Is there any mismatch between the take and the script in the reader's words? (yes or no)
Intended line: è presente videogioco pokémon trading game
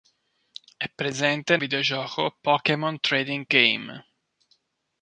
no